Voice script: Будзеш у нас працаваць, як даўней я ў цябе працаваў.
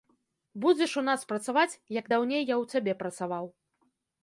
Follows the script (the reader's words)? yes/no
yes